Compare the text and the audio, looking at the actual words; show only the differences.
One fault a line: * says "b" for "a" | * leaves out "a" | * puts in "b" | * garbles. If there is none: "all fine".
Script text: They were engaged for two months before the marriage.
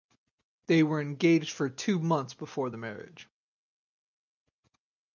all fine